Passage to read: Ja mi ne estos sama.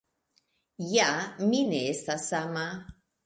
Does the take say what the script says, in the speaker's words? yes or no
no